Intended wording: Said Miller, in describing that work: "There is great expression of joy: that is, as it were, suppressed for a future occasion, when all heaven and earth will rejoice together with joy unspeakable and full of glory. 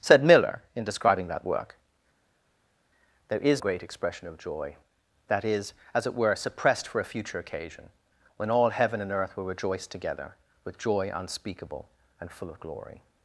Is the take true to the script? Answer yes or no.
yes